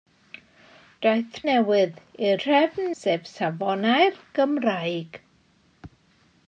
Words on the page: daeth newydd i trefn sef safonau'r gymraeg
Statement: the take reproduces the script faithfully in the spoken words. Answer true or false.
true